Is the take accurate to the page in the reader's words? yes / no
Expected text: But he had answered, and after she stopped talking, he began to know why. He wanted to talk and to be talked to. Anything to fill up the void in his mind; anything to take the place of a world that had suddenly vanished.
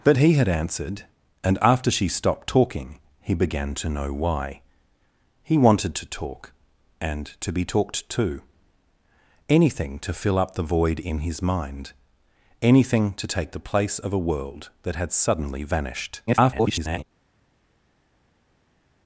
no